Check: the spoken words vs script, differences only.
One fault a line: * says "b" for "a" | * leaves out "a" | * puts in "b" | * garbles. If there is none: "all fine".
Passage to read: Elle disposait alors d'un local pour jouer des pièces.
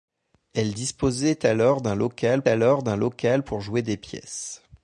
* puts in "alors d'un local"